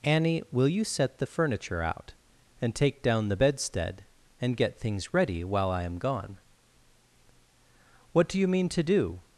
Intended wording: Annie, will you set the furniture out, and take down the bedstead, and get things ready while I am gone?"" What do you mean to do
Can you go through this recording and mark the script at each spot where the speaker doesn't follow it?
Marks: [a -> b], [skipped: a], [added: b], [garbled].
Annie, will you set the furniture out, and take down the bedstead, and get things ready while I am gone?"" What do you mean to do